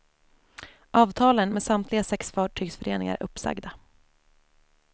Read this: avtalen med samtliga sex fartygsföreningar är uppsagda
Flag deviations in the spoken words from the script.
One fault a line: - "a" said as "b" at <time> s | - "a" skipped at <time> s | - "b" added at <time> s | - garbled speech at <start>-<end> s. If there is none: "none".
none